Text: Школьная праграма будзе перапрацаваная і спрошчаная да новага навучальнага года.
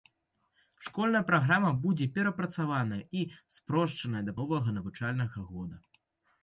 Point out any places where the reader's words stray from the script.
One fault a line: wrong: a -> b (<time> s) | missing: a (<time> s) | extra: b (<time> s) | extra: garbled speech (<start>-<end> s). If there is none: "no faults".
no faults